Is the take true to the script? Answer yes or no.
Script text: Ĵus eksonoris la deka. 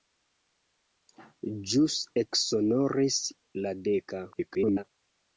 no